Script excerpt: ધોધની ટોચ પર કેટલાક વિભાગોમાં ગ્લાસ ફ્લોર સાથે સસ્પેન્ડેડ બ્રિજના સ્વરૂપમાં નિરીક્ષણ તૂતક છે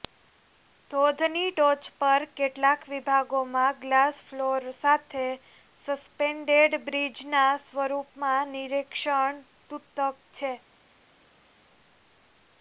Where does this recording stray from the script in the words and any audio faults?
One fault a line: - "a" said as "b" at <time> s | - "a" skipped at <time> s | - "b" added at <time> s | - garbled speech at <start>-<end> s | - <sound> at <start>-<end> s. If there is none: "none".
none